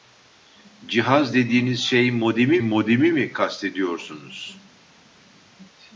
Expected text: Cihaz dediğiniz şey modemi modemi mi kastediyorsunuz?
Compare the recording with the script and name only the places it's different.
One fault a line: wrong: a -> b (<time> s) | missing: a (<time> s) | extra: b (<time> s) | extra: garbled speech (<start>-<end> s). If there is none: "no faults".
no faults